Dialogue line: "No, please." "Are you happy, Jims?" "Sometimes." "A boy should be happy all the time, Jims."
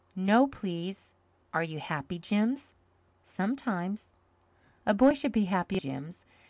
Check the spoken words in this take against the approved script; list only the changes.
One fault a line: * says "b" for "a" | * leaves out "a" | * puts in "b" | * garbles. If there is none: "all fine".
* leaves out "all the time"